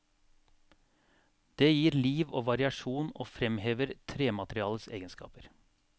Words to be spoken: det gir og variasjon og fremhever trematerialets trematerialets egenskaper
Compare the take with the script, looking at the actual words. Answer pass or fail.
fail